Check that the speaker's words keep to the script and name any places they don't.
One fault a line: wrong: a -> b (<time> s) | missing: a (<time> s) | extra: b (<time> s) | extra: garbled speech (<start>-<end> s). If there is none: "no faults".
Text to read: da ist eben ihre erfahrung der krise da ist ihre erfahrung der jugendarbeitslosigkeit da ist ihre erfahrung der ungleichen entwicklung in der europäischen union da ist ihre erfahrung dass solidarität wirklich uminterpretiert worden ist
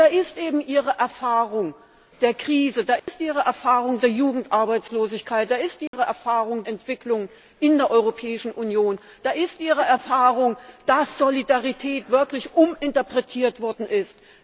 missing: der ungleichen (6.6 s)